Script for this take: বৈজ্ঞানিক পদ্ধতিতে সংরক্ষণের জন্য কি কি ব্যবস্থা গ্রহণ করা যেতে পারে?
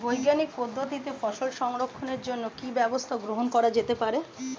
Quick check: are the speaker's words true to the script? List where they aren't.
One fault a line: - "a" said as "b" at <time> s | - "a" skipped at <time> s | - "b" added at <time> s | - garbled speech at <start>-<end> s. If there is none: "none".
- "ফসল" added at 1.2 s
- "কি" skipped at 2.7 s